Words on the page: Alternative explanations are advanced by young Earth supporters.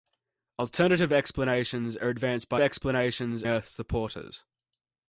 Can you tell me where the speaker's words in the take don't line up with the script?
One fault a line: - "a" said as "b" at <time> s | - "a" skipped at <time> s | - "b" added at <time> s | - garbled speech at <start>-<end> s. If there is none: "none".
- "young" said as "explanations" at 2.6 s